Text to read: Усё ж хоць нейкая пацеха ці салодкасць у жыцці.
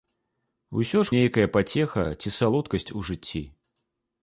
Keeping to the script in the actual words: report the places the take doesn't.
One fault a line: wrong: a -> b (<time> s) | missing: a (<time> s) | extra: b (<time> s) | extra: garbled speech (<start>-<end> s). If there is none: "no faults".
missing: хоць (1.1 s)